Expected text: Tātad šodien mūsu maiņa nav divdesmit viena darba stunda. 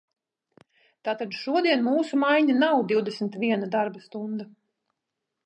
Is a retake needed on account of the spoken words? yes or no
no